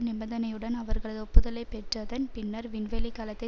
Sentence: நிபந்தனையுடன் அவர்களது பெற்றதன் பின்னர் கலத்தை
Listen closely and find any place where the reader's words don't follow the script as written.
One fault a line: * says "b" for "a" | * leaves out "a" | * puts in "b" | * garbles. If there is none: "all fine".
* puts in "ஒப்புதலை"
* puts in "விண்வெளி"